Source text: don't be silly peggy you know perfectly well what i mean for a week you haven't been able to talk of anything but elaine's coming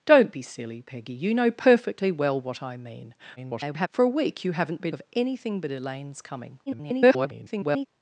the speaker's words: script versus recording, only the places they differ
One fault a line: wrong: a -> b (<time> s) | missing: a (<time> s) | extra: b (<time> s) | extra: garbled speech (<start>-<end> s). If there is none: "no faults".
extra: garbled speech (3.4-3.9 s)
missing: able to talk (4.9 s)
extra: garbled speech (6.7-7.9 s)